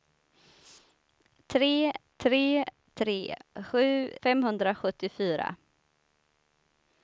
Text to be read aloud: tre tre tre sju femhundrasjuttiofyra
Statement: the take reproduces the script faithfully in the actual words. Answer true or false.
true